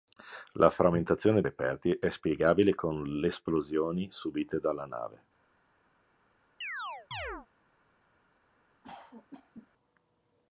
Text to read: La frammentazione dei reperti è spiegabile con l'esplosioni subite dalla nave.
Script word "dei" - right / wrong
wrong